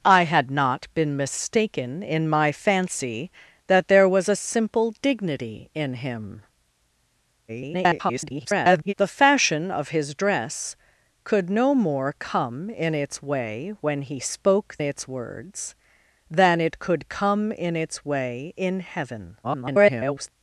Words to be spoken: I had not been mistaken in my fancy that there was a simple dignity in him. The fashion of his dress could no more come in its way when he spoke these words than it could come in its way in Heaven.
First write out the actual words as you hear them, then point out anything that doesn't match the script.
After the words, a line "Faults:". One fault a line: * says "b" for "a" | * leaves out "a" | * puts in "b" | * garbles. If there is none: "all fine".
I had not been mistaken in my fancy that there was a simple dignity in him. [garbled] The fashion of his dress could no more come in its way when he spoke its words than it could come in its way in Heaven. [garbled]
Faults:
* garbles
* says "its" for "these"
* garbles